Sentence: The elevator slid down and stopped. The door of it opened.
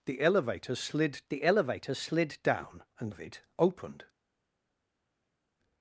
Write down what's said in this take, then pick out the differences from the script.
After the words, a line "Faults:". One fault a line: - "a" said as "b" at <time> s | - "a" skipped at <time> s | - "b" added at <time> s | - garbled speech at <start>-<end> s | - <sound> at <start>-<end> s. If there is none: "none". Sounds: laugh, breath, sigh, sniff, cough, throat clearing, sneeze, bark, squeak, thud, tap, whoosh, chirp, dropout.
The elevator slid the elevator slid down and of it opened.
Faults:
- "down and stopped The door" said as "the elevator slid down and" at 1.3 s